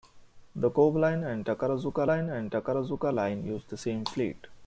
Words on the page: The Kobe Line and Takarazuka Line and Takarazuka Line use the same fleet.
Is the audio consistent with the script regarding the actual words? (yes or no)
yes